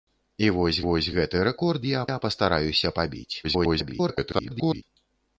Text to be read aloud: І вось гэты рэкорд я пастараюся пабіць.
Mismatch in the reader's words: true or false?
true